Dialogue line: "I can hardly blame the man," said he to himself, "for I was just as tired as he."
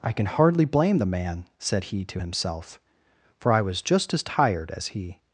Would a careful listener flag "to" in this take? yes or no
no